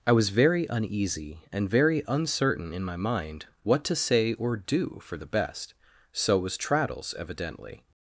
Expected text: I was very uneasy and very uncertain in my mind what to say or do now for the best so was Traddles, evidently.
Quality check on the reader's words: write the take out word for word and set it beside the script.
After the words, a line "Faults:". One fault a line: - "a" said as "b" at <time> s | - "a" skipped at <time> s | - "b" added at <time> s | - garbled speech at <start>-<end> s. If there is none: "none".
I was very uneasy and very uncertain in my mind what to say or do for the best so was Traddles, evidently.
Faults:
- "now" skipped at 5.0 s